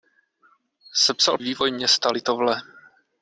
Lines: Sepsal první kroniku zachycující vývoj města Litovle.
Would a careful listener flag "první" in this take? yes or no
yes